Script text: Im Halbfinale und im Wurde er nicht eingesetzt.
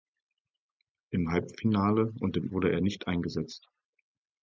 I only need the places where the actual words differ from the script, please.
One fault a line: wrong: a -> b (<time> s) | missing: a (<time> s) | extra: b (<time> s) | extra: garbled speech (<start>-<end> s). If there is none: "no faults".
no faults